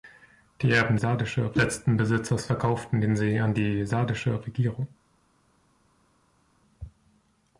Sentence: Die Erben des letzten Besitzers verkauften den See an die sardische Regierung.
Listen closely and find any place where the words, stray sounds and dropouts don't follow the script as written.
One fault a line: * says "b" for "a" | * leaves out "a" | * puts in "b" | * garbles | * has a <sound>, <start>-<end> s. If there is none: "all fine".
* says "sardische" for "des"